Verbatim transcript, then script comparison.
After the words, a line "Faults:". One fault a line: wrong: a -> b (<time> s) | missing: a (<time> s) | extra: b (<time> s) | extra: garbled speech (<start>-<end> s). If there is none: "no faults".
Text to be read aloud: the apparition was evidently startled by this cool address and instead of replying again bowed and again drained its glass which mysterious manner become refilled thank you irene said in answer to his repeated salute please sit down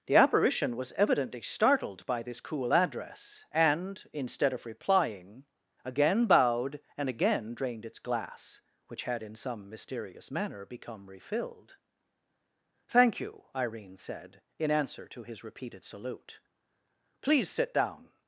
the apparition was evidently startled by this cool address and instead of replying again bowed and again drained its glass which had in some mysterious manner become refilled thank you irene said in answer to his repeated salute please sit down
Faults:
extra: had in some (9.0 s)